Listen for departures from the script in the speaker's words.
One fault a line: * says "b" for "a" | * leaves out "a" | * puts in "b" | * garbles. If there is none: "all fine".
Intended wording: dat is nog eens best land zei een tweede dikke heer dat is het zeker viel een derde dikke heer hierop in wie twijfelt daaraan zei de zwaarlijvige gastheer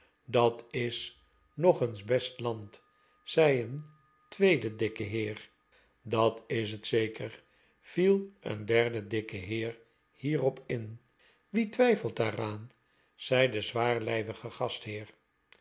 all fine